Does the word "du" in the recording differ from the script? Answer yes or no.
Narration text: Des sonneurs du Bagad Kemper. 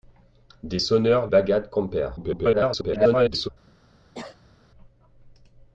yes